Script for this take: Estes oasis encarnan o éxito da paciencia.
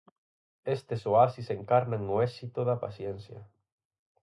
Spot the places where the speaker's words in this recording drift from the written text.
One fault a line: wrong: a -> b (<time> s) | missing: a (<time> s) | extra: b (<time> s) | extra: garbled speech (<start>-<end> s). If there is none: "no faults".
no faults